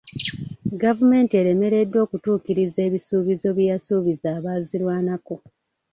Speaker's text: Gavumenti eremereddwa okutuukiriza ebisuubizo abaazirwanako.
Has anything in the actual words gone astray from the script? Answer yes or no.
yes